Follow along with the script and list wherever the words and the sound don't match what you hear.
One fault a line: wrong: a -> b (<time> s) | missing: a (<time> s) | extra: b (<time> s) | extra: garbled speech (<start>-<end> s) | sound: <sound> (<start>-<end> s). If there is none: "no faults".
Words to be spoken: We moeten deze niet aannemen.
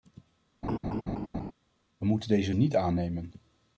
sound: laugh (0.6-1.5 s)